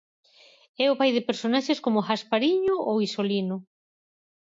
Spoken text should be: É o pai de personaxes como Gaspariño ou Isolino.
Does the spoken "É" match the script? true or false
true